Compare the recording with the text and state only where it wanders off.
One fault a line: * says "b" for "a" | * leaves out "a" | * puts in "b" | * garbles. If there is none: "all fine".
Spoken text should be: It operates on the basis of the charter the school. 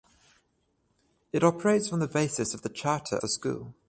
all fine